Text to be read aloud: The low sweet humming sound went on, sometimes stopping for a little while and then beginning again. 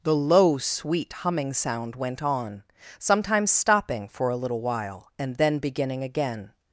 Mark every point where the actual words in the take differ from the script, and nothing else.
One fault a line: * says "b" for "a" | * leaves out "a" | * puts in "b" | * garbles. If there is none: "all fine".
all fine